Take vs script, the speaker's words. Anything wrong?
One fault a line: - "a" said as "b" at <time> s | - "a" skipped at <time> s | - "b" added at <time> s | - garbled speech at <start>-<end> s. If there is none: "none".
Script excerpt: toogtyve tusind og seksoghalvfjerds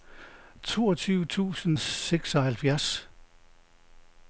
none